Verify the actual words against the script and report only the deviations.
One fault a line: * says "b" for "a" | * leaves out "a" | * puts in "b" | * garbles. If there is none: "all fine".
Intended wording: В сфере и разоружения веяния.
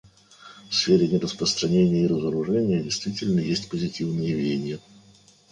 * puts in "нераспространения"
* puts in "действительно есть позитивные"